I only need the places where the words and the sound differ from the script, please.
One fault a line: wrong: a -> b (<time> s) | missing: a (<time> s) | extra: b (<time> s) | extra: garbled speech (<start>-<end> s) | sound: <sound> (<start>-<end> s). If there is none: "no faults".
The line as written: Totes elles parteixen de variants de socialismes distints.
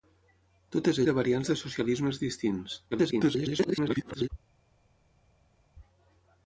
missing: elles parteixen (1.0 s)
extra: garbled speech (2.9-4.3 s)